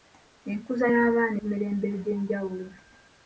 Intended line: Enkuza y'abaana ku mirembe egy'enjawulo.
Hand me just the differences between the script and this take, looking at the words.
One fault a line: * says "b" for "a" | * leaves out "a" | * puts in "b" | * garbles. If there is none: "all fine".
all fine